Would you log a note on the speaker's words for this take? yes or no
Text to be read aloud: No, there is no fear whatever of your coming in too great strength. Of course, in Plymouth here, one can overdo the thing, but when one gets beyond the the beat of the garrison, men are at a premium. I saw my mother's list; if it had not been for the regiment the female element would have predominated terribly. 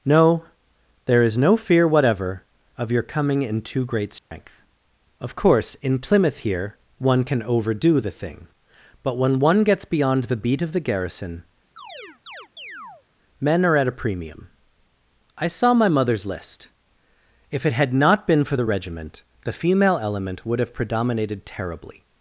yes